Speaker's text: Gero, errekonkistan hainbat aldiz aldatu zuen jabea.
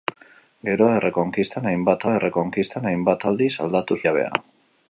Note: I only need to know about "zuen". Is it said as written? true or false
false